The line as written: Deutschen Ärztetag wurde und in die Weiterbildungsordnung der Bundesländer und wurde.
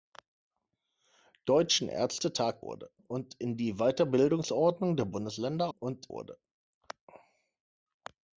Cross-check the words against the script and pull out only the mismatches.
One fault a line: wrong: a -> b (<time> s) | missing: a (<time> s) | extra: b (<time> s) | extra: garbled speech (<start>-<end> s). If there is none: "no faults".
no faults